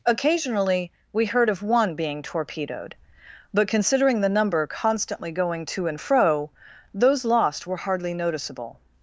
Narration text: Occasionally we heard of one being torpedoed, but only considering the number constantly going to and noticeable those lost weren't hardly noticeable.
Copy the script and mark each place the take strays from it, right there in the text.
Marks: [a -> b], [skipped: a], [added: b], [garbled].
Occasionally we heard of one being torpedoed, but [skipped: only] considering the number constantly going to and [noticeable -> fro] those lost [weren't -> were] hardly noticeable.